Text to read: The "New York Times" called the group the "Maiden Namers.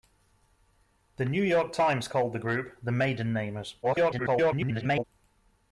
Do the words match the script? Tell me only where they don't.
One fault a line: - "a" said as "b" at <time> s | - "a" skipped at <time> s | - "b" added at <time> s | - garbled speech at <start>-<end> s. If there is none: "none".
- garbled speech at 3.8-5.0 s